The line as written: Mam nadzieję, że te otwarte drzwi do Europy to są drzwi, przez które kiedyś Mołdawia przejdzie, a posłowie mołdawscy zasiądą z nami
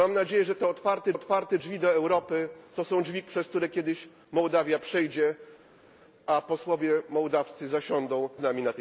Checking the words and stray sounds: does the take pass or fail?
fail